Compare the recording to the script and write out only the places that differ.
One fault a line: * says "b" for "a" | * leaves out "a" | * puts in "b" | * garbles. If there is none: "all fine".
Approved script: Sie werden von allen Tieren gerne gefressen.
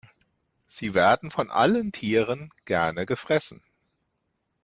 all fine